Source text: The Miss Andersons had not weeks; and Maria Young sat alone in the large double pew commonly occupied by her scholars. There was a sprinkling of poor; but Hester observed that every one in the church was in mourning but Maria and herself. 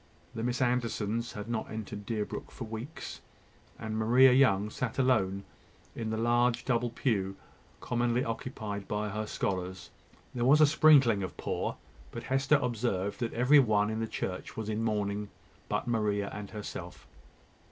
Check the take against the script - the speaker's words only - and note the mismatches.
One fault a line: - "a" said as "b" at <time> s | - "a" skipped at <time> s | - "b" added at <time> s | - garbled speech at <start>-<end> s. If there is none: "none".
- "entered Deerbrook for" added at 1.7 s